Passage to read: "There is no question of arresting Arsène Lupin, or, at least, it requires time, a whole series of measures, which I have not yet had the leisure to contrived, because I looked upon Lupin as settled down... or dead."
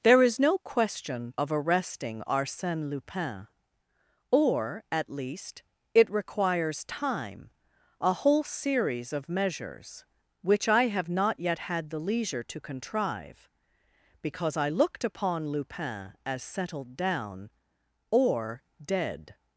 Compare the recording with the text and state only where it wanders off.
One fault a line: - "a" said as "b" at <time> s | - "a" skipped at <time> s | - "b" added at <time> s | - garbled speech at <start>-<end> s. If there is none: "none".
- "contrived" said as "contrive" at 12.6 s